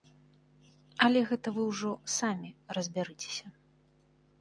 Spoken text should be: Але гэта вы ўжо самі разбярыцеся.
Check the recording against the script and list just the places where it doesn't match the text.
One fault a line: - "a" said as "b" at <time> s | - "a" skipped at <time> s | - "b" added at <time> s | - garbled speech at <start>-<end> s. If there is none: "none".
none